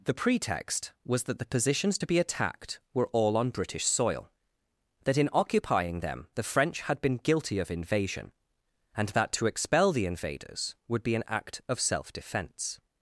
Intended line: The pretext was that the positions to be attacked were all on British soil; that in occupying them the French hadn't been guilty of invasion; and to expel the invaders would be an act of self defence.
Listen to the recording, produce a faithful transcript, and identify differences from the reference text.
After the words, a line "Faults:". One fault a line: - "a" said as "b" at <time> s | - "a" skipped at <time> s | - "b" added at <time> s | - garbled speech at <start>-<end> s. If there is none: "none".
The pretext was that the positions to be attacked were all on British soil; that in occupying them the French had been guilty of invasion; and that to expel the invaders would be an act of self defence.
Faults:
- "hadn't" said as "had" at 6.8 s
- "that" added at 9.2 s